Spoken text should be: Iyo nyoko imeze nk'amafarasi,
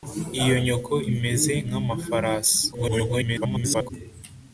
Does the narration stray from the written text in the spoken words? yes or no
yes